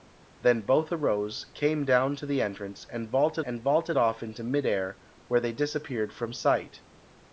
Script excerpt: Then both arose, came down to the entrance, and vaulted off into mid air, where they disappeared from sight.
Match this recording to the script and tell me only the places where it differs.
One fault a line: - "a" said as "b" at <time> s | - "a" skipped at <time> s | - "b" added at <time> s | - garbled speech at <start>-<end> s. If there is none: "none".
- "and vaulted" added at 3.4 s